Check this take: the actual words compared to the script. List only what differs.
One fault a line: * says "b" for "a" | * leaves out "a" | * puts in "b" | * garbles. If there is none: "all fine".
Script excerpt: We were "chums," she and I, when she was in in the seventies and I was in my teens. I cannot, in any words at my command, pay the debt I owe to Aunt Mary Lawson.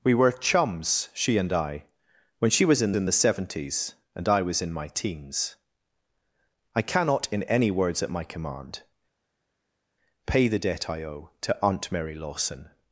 all fine